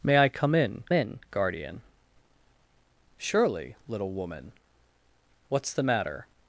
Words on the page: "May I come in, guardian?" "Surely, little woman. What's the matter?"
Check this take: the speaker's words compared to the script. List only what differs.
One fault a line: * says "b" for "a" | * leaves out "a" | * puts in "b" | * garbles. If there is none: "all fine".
* puts in "in"